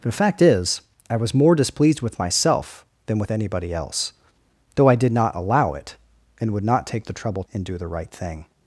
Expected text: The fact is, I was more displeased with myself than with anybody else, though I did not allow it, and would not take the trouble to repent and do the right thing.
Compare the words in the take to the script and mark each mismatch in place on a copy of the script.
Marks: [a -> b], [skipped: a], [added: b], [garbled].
The fact is, I was more displeased with myself than with anybody else, though I did not allow it, and would not take the trouble [skipped: to repent] and do the right thing.